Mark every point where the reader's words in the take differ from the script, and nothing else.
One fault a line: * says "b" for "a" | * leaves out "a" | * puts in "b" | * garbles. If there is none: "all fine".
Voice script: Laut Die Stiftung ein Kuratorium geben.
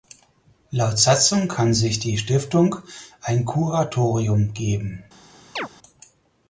* puts in "Satzung kann sich"